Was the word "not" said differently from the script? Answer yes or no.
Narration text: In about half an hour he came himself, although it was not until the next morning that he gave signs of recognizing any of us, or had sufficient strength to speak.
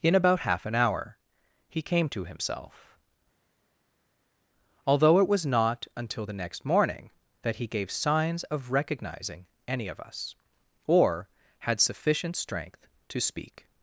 no